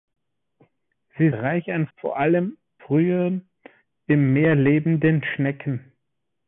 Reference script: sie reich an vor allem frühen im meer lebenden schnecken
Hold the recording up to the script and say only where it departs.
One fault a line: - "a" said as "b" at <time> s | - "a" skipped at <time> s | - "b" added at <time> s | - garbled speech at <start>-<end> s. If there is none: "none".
none